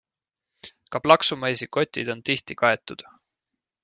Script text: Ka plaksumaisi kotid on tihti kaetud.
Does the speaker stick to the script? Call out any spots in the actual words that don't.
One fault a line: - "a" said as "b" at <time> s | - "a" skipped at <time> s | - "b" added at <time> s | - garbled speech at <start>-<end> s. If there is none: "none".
none